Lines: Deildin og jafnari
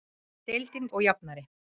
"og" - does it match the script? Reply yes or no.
yes